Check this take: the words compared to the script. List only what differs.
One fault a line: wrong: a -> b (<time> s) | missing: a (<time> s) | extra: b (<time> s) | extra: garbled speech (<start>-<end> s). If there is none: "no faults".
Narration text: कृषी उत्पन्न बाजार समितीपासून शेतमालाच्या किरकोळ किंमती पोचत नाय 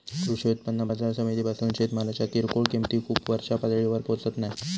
extra: खूप वरच्या पातळीवर (3.0 s)